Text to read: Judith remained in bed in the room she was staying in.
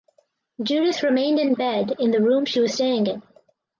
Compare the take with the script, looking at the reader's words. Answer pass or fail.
pass